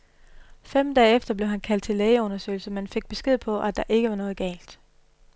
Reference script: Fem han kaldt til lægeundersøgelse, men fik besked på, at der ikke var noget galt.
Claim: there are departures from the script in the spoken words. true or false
true